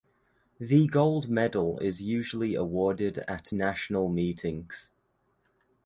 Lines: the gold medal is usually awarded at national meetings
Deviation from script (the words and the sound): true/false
false